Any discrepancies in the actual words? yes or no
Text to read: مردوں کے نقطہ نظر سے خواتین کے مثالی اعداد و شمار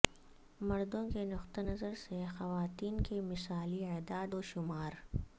no